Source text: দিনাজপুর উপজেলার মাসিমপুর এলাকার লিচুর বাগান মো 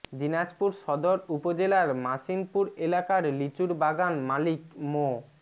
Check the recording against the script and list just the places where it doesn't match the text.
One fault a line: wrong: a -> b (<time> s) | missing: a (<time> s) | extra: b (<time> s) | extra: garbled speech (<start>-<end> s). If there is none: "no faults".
extra: সদর (0.8 s)
extra: মালিক (4.3 s)